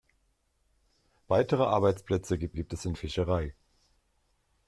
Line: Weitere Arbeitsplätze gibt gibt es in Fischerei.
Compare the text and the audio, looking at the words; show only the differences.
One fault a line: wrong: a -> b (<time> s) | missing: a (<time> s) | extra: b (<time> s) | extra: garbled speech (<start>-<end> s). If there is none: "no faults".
no faults